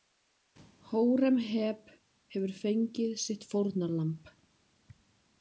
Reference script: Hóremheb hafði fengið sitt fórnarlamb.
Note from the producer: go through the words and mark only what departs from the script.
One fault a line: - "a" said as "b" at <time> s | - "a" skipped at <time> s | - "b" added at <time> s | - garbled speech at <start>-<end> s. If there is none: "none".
- "hafði" said as "hefur" at 2.4 s